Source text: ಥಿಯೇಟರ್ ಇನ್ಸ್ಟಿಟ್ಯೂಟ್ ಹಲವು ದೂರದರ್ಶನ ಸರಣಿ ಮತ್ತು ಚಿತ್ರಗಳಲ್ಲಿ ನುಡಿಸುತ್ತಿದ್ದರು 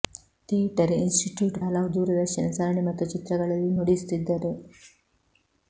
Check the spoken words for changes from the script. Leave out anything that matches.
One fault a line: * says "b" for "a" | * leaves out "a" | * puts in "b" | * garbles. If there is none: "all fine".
all fine